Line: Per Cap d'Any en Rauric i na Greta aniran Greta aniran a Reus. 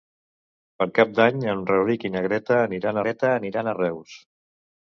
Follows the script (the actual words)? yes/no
yes